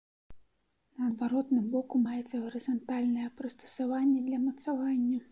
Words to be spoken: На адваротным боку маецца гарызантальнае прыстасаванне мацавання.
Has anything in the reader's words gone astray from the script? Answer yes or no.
yes